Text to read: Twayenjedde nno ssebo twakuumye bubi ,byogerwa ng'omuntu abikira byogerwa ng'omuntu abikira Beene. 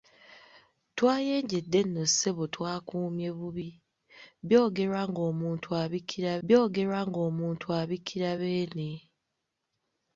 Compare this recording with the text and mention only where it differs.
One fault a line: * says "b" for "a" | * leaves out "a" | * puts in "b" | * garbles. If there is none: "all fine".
all fine